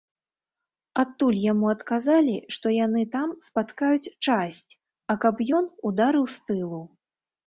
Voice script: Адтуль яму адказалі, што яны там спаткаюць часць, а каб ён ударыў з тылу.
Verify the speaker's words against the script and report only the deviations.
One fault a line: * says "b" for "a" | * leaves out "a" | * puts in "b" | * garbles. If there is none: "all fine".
all fine